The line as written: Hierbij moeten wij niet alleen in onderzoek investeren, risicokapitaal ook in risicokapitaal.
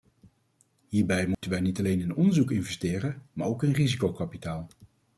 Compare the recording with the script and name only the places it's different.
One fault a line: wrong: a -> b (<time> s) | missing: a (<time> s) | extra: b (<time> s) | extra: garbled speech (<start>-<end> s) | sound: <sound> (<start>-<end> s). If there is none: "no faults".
sound: dropout (1.3-1.4 s)
wrong: risicokapitaal -> maar (3.3 s)